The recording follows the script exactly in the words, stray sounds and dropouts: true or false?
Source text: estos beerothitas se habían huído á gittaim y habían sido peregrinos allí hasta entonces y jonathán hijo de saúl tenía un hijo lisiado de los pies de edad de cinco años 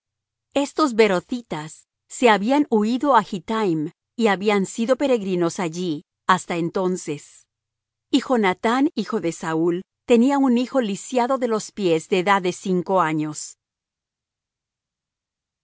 true